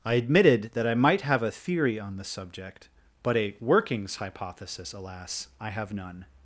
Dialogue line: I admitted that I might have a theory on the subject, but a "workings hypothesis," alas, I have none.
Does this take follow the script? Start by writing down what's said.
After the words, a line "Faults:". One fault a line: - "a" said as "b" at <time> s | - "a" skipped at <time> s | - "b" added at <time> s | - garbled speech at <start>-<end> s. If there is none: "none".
I admitted that I might have a theory on the subject, but a "workings hypothesis," alas, I have none.
Faults:
none